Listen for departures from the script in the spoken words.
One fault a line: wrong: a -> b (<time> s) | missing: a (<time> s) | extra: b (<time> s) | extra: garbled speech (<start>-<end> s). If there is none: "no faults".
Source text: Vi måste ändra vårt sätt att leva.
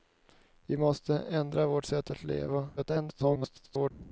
extra: garbled speech (2.8-3.9 s)